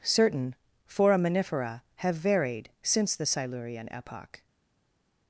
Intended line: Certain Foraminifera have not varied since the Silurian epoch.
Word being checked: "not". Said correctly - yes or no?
no